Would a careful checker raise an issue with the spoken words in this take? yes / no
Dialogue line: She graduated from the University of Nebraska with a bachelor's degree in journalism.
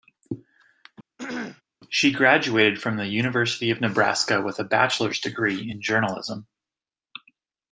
no